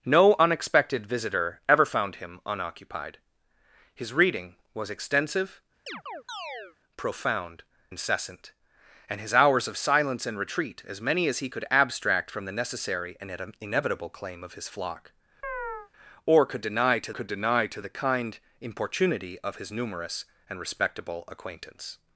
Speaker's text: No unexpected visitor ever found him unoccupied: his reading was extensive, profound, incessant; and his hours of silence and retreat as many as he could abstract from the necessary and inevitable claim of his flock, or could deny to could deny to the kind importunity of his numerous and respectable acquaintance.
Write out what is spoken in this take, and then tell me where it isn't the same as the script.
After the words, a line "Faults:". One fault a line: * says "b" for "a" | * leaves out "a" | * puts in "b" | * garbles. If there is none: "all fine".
No unexpected visitor ever found him unoccupied: his reading was extensive, profound, incessant; and his hours of silence and retreat as many as he could abstract from the necessary and inevitable claim of his flock, or could deny to could deny to the kind importunity of his numerous and respectable acquaintance.
Faults:
all fine